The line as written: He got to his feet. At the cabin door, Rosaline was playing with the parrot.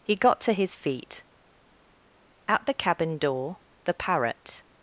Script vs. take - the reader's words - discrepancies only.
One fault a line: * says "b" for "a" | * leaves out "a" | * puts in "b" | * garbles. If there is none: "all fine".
* leaves out "Rosaline was playing with"